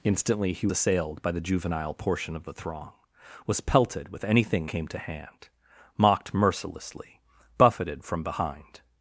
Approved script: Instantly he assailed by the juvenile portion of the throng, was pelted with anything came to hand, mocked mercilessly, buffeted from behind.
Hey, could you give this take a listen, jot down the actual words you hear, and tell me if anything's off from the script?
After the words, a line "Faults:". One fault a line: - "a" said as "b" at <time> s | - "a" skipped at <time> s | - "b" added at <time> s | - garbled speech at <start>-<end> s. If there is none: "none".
Instantly he assailed by the juvenile portion of the throng, was pelted with anything came to hand, mocked mercilessly, buffeted from behind.
Faults:
none